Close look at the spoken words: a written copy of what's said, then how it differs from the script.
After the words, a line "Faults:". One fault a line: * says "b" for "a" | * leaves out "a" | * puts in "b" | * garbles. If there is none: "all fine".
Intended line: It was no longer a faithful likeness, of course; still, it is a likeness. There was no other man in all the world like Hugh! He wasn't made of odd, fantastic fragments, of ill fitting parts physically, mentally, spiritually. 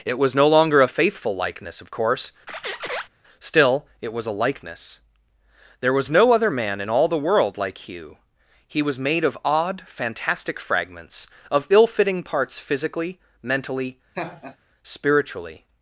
It was no longer a faithful likeness, of course; still, it was a likeness. There was no other man in all the world like Hugh! He was made of odd, fantastic fragments, of ill fitting parts physically, mentally, spiritually.
Faults:
* says "was" for "is"
* says "was" for "wasn't"